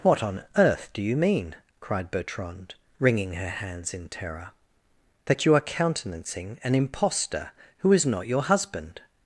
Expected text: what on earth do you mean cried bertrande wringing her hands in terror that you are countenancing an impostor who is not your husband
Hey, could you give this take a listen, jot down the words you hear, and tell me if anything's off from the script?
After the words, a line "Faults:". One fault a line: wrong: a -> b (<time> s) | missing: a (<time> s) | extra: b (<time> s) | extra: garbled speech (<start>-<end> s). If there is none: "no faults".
what on earth do you mean cried bertrande wringing her hands in terror that you are countenancing an impostor who is not your husband
Faults:
no faults